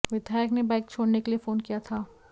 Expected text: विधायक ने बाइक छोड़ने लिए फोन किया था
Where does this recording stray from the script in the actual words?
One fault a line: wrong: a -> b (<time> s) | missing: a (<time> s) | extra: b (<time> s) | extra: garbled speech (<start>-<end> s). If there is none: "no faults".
extra: के (1.2 s)